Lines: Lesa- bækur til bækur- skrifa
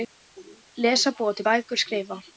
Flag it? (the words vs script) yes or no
yes